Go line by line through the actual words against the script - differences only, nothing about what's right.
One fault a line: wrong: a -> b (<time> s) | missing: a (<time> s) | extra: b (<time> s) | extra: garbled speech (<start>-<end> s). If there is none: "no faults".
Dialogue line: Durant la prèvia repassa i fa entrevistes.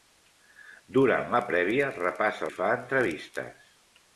no faults